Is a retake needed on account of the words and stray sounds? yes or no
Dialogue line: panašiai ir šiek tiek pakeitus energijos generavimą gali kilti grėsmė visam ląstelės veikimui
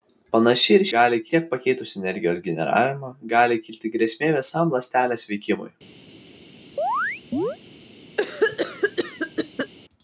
yes